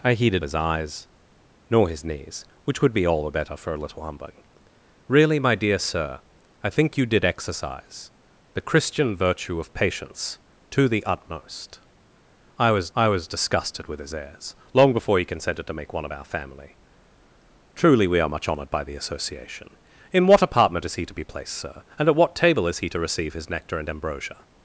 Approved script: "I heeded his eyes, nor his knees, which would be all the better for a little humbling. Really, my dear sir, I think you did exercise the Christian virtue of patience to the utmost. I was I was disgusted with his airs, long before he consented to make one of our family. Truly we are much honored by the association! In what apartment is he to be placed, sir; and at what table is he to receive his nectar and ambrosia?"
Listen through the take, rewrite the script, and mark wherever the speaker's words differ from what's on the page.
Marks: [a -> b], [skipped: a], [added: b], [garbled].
"I heeded his eyes, nor his knees, which would be all the better for a little humbling. Really, my dear sir, I think you did exercise the Christian virtue of patience to the utmost. I was I was disgusted with his airs, long before he consented to make one of our family. Truly we are much honored by the association! In what apartment is he to be placed, sir; and at what table is he to receive his nectar and ambrosia?"